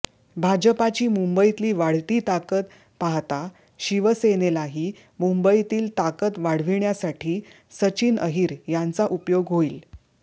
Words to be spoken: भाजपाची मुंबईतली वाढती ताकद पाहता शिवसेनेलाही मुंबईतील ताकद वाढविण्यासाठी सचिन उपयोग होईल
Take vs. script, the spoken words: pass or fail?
fail